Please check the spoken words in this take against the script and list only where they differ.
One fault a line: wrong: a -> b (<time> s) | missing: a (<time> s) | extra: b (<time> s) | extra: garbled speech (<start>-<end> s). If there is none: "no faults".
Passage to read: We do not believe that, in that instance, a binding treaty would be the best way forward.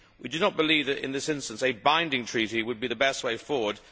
wrong: that -> this (1.1 s)